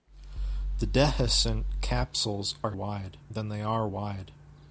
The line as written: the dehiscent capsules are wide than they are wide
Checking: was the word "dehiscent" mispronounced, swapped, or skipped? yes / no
no